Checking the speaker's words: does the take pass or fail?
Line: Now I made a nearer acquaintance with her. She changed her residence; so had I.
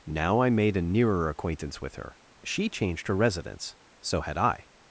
pass